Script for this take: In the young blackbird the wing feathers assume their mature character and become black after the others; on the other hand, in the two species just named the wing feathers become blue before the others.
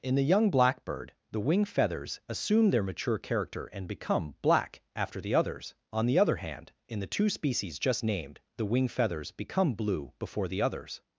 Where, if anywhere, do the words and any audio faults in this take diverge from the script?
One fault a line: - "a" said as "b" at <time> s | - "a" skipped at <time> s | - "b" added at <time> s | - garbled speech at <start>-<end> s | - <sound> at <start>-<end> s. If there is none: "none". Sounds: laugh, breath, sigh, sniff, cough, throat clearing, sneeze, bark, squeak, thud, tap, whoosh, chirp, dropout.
none